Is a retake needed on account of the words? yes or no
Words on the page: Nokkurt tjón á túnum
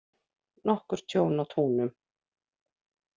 no